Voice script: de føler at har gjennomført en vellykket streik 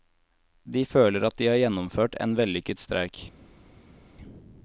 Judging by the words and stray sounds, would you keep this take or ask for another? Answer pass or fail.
fail